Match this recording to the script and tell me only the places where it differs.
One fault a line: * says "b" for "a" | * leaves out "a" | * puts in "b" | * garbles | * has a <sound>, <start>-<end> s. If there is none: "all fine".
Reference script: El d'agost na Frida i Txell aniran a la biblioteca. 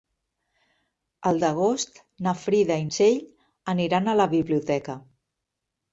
all fine